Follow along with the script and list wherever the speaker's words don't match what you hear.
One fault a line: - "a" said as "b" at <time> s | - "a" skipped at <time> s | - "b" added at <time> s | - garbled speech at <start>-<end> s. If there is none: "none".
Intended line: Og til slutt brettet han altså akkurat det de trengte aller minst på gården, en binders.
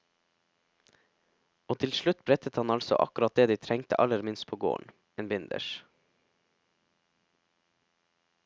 none